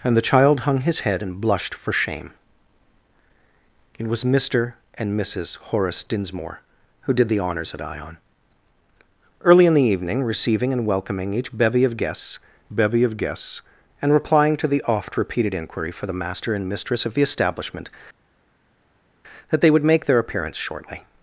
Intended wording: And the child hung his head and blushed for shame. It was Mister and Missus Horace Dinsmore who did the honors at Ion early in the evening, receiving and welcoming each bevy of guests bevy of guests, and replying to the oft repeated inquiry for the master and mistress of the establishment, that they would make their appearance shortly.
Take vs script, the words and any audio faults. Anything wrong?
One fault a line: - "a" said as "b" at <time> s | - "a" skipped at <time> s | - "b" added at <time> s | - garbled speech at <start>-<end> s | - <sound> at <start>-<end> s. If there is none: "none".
none